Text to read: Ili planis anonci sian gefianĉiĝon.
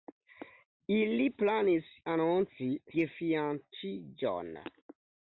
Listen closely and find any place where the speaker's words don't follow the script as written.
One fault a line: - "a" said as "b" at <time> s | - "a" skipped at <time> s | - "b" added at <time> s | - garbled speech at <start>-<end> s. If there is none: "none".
- "sian" skipped at 2.7 s